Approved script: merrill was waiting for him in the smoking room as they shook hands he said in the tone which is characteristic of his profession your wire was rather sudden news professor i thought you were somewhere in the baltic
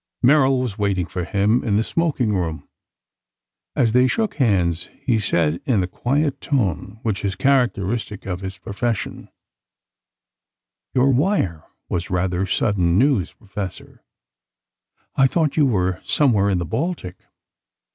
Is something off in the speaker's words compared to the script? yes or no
yes